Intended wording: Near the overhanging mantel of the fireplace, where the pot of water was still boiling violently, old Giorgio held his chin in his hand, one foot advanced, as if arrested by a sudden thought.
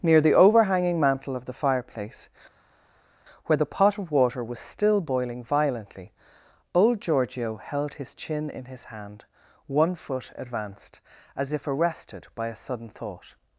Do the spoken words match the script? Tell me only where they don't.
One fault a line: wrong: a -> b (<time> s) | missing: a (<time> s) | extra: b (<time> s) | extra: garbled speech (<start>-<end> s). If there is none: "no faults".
no faults